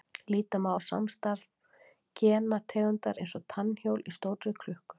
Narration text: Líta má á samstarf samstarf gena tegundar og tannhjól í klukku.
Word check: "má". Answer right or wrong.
right